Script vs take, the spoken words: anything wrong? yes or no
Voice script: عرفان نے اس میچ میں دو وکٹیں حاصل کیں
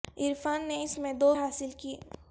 yes